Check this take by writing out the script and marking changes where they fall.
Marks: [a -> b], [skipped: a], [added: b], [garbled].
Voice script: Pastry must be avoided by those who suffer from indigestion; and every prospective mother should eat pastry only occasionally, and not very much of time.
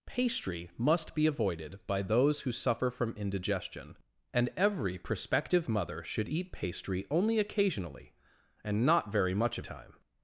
Pastry must be avoided by those who suffer from indigestion; and every prospective mother should eat pastry only occasionally, and not very much of time.